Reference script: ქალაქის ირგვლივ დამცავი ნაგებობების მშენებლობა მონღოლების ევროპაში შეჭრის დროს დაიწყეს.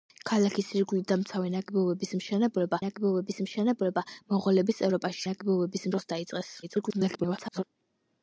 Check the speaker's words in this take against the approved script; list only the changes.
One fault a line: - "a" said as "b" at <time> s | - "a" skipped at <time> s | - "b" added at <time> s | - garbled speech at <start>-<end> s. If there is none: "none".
- "ნაგებობების მშენებლობა" added at 2.8 s
- "შეჭრის" said as "ნაგებობების" at 5.3 s
- garbled speech at 6.6-7.6 s